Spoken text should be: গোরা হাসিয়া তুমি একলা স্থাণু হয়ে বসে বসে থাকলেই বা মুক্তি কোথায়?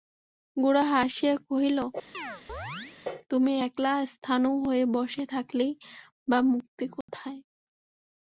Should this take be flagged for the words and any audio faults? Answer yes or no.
yes